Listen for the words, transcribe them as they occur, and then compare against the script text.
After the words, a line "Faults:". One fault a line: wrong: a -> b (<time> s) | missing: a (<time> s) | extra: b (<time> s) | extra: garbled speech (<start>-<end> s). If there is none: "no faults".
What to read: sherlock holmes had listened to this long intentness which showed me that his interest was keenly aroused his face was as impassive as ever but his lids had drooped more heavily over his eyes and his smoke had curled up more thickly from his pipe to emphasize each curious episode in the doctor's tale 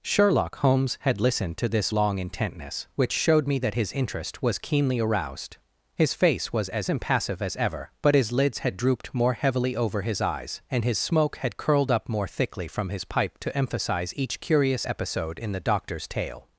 sherlock holmes had listened to this long intentness which showed me that his interest was keenly aroused his face was as impassive as ever but his lids had drooped more heavily over his eyes and his smoke had curled up more thickly from his pipe to emphasize each curious episode in the doctor's tale
Faults:
no faults